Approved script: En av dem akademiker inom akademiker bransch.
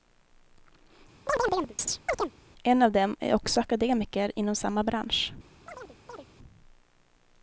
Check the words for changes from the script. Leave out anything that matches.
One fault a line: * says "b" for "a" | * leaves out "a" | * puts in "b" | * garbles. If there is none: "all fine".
* puts in "är också"
* says "samma" for "akademiker"